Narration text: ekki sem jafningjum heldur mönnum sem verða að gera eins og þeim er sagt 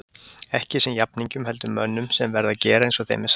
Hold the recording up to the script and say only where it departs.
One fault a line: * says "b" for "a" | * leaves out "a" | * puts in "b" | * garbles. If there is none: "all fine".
all fine